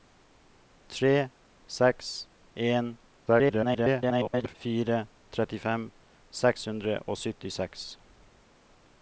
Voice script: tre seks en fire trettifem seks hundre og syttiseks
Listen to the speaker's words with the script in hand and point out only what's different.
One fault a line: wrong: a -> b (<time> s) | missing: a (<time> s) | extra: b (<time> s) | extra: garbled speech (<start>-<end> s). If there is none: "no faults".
extra: garbled speech (3.3-4.5 s)